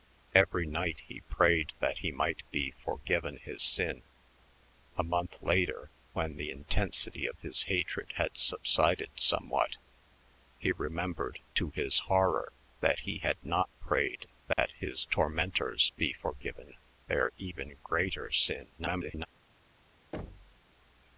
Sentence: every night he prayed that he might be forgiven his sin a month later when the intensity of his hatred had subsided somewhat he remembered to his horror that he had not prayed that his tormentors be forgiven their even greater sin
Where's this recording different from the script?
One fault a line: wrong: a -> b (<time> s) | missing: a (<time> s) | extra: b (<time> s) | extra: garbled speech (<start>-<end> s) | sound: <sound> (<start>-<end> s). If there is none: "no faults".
sound: dropout (14.5-14.6 s)
extra: garbled speech (18.8-19.3 s)
sound: thud (20.1-20.6 s)